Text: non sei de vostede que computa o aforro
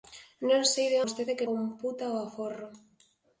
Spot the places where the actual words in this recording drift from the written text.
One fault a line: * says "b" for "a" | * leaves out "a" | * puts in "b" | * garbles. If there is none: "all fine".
all fine